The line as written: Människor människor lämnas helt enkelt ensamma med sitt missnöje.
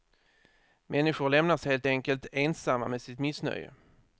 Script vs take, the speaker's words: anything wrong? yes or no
yes